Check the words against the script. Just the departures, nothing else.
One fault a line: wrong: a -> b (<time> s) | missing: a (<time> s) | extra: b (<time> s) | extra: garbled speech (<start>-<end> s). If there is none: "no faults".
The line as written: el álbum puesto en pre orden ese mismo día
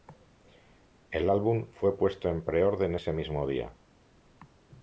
extra: fue (1.7 s)